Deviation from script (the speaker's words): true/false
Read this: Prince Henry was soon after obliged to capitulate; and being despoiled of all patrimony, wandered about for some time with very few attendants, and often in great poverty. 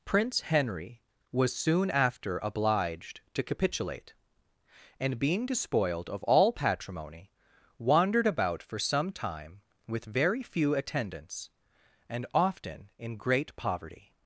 false